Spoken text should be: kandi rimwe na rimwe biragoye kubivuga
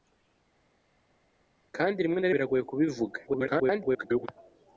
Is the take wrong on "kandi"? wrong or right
right